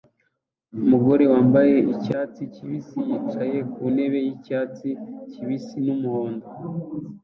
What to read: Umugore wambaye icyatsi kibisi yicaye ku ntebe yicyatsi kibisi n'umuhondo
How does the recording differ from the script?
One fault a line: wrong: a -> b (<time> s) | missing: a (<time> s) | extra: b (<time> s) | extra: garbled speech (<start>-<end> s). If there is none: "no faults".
no faults